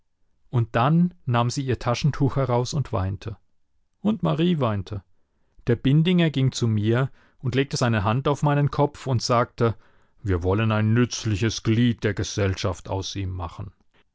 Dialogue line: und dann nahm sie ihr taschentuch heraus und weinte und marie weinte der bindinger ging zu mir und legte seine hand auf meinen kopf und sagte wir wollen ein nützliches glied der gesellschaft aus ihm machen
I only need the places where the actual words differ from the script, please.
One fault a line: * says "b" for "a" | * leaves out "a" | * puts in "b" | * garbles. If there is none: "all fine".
all fine